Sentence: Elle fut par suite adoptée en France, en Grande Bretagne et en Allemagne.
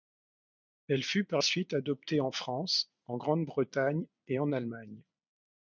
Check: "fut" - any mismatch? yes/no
no